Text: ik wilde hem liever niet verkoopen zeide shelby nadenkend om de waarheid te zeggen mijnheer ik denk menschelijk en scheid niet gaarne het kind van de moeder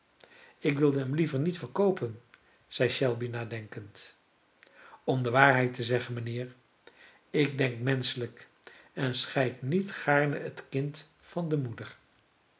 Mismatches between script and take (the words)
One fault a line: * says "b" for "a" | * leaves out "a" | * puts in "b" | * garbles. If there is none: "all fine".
all fine